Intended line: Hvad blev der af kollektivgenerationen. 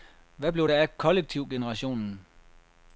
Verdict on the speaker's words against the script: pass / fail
pass